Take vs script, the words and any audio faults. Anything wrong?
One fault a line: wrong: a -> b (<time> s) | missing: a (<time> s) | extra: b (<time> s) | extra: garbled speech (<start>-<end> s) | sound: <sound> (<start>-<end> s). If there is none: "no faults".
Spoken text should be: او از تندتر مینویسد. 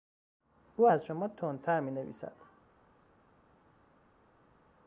extra: شما (1.0 s)